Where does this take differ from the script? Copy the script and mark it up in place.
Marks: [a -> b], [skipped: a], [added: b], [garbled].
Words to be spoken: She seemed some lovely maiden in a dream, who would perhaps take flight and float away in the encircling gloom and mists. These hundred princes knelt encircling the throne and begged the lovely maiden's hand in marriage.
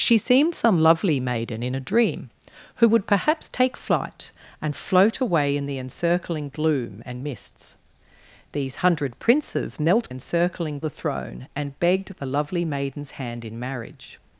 She seemed some lovely maiden in a dream, who would perhaps take flight and float away in the encircling gloom and mists. These hundred princes knelt encircling the throne and begged the lovely maiden's hand in marriage.